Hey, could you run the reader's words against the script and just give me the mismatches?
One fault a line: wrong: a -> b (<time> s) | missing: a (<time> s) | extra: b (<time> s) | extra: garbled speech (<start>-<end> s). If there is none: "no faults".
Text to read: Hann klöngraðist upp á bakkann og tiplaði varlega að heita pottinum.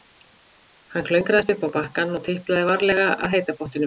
no faults